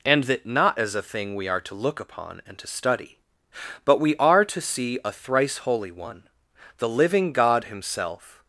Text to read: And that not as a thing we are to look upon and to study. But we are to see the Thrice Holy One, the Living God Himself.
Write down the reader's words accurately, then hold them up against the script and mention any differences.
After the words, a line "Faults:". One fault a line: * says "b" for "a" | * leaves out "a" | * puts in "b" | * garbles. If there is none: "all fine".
And that not as a thing we are to look upon and to study. But we are to see a Thrice Holy One, the Living God Himself.
Faults:
* says "a" for "the"